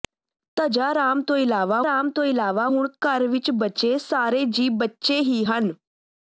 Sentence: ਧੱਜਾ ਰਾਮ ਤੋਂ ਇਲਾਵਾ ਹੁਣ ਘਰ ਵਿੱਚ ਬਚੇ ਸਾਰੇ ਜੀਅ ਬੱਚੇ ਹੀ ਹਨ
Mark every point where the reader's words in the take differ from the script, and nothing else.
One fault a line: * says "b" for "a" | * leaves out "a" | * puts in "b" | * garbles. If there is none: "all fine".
* puts in "ਰਾਮ ਤੋਂ ਇਲਾਵਾ"